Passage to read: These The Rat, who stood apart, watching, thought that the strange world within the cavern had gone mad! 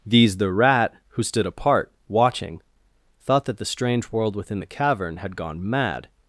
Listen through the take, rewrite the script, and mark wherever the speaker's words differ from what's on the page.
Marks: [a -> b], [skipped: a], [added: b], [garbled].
These The Rat, who stood apart, watching, thought that the strange world within the cavern had gone mad!